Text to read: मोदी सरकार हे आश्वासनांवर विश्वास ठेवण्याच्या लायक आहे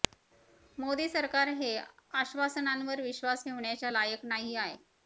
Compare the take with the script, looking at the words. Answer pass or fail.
fail